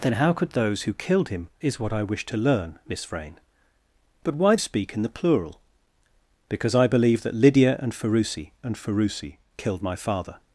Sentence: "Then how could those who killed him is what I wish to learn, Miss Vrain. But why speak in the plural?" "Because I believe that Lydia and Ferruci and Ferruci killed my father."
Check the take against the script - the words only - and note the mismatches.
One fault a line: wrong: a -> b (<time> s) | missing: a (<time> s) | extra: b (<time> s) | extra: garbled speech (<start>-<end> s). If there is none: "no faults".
no faults